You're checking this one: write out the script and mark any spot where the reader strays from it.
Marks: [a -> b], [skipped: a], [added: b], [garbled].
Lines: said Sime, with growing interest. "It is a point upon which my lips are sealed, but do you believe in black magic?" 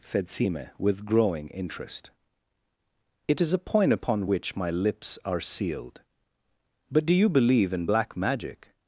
said Sime, with growing interest. "It is a point upon which my lips are sealed, but do you believe in black magic?"